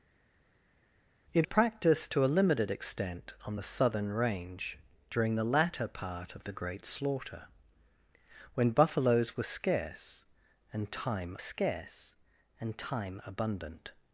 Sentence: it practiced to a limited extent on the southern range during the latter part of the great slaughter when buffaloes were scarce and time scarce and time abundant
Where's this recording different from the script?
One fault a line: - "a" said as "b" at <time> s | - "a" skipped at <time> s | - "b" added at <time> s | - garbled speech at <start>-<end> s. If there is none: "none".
none